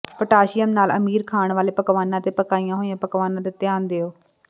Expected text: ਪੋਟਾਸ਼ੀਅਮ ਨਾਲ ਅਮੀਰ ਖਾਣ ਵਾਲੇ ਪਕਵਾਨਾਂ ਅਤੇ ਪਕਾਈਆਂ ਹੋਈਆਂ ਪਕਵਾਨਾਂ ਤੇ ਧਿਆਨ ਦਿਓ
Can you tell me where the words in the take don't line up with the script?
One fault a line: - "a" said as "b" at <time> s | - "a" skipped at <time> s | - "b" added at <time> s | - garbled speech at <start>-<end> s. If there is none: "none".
none